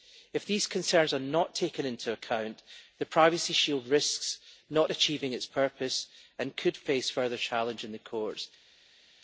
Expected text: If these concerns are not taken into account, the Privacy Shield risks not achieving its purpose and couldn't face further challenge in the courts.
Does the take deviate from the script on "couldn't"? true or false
true